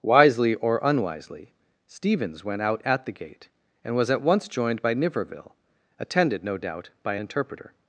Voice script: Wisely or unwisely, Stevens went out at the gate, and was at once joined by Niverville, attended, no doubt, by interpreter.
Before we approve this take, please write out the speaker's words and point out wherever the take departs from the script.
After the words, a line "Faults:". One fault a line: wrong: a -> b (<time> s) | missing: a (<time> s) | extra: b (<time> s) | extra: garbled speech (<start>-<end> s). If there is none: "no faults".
Wisely or unwisely, Stevens went out at the gate, and was at once joined by Niverville, attended, no doubt, by interpreter.
Faults:
no faults